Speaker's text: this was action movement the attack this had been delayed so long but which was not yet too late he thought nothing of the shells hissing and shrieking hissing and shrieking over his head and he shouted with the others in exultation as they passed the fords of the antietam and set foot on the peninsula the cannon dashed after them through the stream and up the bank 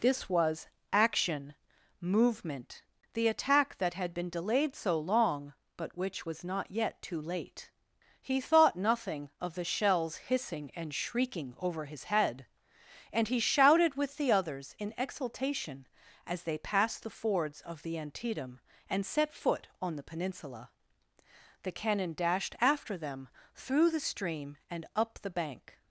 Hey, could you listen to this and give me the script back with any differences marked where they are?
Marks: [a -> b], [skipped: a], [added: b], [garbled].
this was action movement the attack [this -> that] had been delayed so long but which was not yet too late he thought nothing of the shells hissing and shrieking [skipped: hissing and shrieking] over his head and he shouted with the others in exultation as they passed the fords of the antietam and set foot on the peninsula the cannon dashed after them through the stream and up the bank